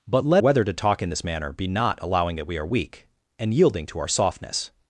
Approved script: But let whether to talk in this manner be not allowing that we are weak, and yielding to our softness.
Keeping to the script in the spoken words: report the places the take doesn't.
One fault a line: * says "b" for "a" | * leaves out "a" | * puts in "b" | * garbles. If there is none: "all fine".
all fine